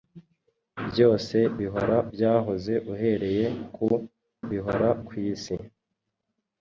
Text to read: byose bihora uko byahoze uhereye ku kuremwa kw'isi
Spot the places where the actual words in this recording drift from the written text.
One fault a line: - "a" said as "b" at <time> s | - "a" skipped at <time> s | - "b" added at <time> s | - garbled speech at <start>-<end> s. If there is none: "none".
- "uko" skipped at 2.0 s
- "kuremwa" said as "bihora" at 4.5 s